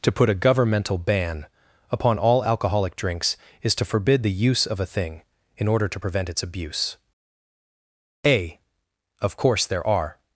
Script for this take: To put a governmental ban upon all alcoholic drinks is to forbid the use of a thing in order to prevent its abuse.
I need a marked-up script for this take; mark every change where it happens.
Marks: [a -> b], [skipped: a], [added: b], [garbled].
To put a governmental ban upon all alcoholic drinks is to forbid the use of a thing in order to prevent its abuse. [added: A Of course there are]